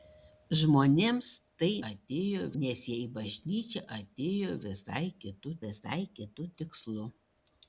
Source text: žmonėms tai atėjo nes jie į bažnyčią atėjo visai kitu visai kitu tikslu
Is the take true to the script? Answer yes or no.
yes